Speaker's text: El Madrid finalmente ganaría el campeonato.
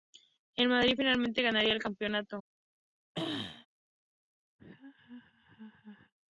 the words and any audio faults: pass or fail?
fail